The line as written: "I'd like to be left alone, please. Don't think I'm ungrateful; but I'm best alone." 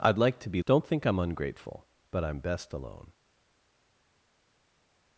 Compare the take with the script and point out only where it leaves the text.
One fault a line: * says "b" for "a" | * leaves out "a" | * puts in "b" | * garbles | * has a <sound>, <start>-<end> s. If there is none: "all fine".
* leaves out "left alone please"